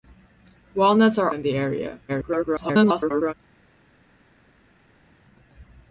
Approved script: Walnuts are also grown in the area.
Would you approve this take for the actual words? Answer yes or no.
no